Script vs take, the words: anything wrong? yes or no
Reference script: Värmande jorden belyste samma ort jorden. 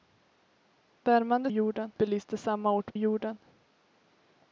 no